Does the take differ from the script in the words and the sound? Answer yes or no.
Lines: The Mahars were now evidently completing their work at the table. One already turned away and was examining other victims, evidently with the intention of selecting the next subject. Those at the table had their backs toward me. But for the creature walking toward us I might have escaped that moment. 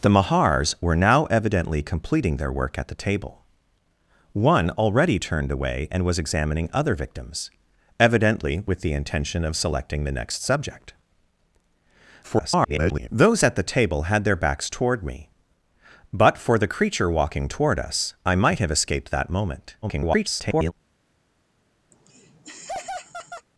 yes